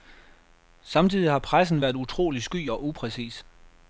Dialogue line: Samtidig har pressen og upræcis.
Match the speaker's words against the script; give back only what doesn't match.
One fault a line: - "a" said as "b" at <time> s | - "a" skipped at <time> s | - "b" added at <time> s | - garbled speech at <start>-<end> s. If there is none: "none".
- "været utrolig sky" added at 1.8 s